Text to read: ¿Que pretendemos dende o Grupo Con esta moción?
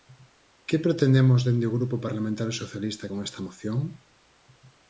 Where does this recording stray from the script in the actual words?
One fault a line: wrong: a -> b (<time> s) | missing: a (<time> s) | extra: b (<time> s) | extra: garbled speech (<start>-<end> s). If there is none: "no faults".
extra: Parlamentario Socialista (2.0 s)